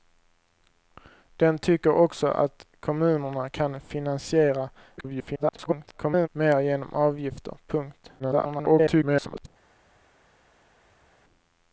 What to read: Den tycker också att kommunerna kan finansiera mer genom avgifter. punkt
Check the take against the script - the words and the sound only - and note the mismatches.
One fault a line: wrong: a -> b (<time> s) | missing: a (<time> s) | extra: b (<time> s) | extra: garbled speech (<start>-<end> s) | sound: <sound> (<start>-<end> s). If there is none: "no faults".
extra: garbled speech (5.0-6.3 s)
extra: garbled speech (8.2-9.5 s)